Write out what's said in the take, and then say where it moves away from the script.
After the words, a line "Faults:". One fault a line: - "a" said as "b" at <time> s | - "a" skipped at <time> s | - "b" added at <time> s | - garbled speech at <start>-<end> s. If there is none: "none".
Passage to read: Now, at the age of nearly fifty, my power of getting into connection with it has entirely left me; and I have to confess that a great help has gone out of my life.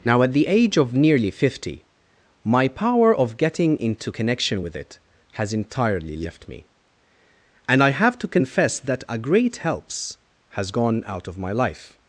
Now, at the age of nearly fifty, my power of getting into connection with it has entirely left me; and I have to confess that a great helps has gone out of my life.
Faults:
- "help" said as "helps" at 9.6 s